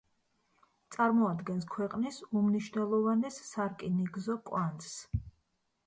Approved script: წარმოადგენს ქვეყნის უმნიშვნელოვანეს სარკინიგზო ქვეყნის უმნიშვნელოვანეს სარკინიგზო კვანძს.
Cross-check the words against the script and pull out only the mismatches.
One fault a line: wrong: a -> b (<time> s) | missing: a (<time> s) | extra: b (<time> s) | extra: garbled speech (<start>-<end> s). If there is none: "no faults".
missing: ქვეყნის უმნიშვნელოვანეს სარკინიგზო (4.4 s)